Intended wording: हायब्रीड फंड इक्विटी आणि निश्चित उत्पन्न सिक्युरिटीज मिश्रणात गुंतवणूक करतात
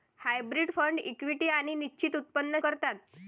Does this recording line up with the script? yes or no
no